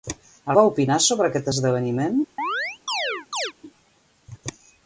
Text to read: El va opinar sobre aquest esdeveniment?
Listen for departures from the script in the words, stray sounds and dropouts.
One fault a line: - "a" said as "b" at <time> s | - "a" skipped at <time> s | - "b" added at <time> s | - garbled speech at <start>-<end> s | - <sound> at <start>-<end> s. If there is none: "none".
- chirp at 2.4-3.5 s